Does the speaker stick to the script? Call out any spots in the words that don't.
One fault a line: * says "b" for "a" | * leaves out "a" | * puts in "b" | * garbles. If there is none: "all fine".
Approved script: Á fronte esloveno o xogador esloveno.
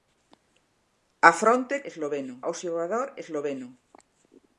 all fine